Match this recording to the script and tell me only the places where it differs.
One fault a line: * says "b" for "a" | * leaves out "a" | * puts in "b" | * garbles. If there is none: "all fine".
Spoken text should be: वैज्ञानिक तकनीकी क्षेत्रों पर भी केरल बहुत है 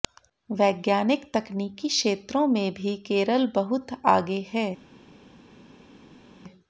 * says "में" for "पर"
* puts in "आगे"